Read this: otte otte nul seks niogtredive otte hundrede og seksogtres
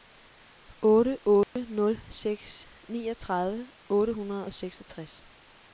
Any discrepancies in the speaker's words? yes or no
no